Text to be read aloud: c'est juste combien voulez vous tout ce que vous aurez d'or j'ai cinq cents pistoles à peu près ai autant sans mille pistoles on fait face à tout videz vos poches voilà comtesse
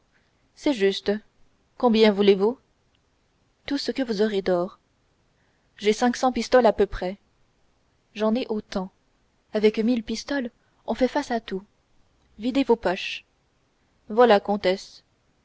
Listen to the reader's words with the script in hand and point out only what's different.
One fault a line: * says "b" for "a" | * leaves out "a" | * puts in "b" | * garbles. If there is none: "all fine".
* puts in "j'en"
* says "avec" for "sans"